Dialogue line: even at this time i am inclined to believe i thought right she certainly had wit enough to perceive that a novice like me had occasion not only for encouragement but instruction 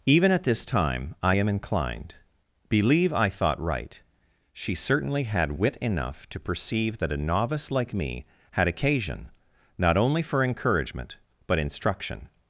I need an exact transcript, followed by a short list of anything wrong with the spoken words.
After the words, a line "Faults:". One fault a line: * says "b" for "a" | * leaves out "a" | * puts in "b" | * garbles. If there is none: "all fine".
even at this time i am inclined believe i thought right she certainly had wit enough to perceive that a novice like me had occasion not only for encouragement but instruction
Faults:
* leaves out "to"